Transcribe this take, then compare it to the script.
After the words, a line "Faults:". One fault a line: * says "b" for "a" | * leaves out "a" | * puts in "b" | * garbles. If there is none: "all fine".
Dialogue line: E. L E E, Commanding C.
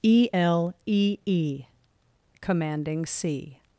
E. L E E, Commanding C.
Faults:
all fine